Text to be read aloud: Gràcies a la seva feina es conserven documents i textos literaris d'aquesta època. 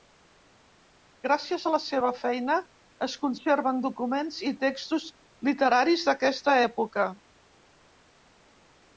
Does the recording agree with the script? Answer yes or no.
yes